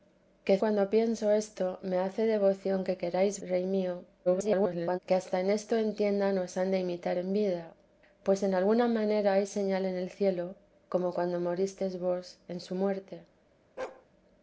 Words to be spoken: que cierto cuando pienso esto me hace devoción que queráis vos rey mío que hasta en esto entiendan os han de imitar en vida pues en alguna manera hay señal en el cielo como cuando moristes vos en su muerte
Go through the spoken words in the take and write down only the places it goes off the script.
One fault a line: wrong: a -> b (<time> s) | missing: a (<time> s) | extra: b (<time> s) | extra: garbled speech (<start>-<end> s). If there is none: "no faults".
missing: cierto (0.6 s)
missing: vos (3.4 s)
extra: garbled speech (4.3-5.0 s)